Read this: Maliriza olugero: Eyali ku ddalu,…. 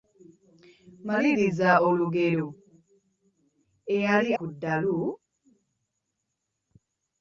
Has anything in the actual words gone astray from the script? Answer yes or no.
no